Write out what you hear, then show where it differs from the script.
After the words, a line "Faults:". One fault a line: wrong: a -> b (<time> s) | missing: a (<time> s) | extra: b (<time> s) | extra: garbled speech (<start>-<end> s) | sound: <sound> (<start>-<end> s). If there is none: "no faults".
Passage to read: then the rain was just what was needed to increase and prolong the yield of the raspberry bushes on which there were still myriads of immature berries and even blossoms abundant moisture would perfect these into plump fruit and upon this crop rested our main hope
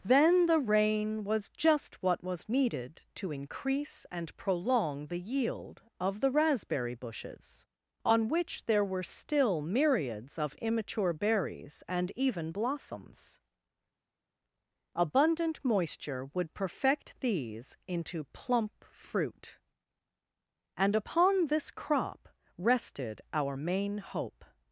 then the rain was just what was needed to increase and prolong the yield of the raspberry bushes on which there were still myriads of immature berries and even blossoms abundant moisture would perfect these into plump fruit and upon this crop rested our main hope
Faults:
no faults